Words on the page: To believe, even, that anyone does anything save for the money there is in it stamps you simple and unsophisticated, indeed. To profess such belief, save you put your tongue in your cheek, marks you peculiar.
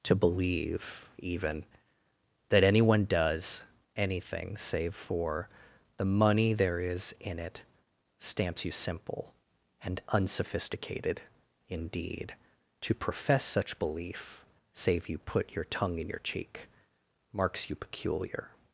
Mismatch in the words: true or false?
false